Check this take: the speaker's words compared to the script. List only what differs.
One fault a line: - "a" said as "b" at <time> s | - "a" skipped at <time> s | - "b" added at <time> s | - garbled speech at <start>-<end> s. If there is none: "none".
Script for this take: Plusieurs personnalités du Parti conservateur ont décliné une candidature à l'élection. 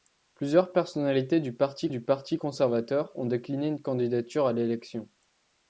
- "du Parti" added at 1.9 s